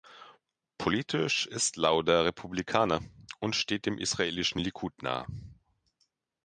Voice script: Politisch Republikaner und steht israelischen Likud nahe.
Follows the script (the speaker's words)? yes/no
no